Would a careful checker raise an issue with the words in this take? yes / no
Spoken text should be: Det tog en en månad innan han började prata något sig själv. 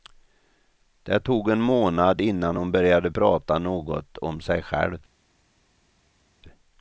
yes